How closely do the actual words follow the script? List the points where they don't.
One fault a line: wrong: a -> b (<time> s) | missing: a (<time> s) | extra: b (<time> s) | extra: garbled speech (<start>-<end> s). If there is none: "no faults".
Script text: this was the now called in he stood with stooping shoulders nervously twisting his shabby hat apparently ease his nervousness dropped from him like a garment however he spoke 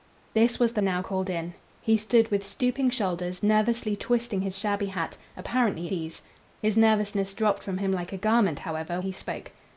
no faults